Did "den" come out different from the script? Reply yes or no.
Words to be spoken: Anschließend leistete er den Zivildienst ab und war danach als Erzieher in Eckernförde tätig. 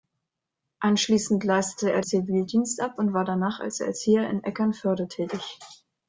yes